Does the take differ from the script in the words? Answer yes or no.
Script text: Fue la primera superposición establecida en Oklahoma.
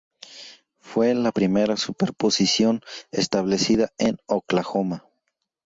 no